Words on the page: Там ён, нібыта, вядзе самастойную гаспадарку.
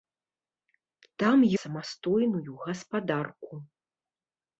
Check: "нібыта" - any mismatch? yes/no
yes